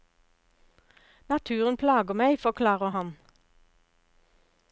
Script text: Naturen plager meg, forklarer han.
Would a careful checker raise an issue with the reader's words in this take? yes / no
no